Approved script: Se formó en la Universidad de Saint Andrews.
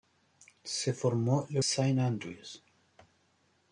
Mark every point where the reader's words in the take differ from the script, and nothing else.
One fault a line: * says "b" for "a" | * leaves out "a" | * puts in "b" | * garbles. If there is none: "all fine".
* leaves out "Universidad de"